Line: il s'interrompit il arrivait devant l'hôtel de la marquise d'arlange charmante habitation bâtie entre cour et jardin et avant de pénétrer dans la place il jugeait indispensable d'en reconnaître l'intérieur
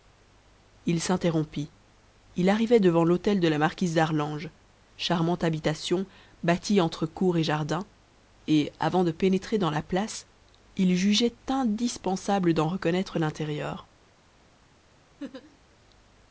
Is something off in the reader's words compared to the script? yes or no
no